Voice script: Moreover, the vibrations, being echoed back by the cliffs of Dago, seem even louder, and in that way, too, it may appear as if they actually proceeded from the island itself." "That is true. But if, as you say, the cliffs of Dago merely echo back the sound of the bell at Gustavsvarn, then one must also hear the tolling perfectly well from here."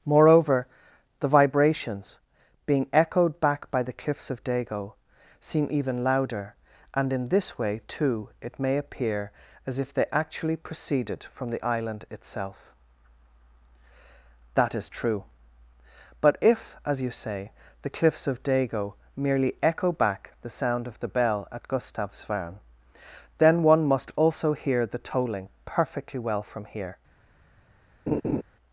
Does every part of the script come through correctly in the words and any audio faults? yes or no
no